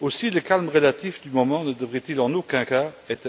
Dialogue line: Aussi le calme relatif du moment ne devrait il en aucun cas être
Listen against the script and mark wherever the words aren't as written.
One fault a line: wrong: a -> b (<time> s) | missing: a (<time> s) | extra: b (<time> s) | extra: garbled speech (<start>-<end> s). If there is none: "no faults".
no faults